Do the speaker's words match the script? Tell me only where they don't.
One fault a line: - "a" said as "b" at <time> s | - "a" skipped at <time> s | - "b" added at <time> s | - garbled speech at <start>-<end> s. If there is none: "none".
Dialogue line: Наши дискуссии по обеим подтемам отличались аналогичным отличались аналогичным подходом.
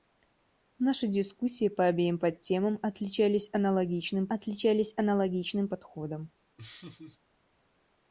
none